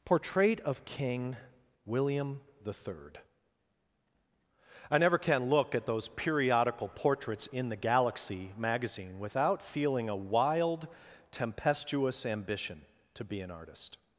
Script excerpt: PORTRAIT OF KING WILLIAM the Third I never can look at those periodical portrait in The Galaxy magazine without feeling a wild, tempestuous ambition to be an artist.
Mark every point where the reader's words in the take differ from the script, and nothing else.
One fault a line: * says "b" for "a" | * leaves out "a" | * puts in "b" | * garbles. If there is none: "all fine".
* says "portraits" for "portrait"